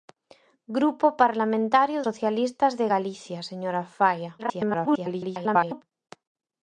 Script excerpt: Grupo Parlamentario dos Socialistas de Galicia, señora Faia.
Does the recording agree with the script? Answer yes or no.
no